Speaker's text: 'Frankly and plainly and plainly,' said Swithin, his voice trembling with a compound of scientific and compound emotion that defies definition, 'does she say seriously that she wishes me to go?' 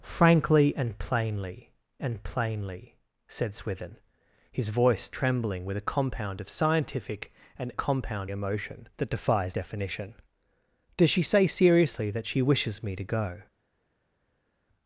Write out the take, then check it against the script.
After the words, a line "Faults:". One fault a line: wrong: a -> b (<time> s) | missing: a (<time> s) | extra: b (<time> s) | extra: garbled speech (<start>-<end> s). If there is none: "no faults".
'Frankly and plainly and plainly,' said Swithin, his voice trembling with a compound of scientific and compound emotion that defies definition, 'does she say seriously that she wishes me to go?'
Faults:
no faults